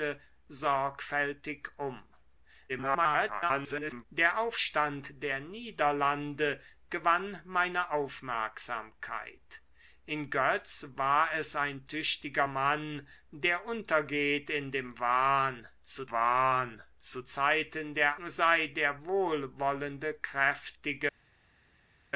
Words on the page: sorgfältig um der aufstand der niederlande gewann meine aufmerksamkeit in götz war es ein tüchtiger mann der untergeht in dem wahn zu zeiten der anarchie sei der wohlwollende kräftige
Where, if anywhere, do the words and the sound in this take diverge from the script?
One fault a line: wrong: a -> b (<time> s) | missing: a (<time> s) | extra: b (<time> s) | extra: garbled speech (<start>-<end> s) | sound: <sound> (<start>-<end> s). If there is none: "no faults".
extra: garbled speech (2.7-4.1 s)
extra: wahn zu (16.1 s)
missing: anarchie (18.2 s)